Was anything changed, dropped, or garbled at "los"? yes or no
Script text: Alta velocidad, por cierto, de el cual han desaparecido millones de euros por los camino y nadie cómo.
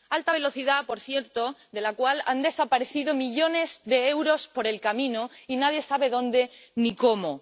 yes